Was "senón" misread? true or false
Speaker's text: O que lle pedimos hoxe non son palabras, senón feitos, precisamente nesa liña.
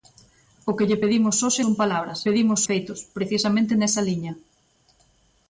true